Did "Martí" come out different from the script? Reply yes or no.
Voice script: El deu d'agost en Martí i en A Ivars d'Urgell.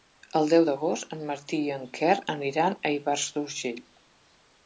no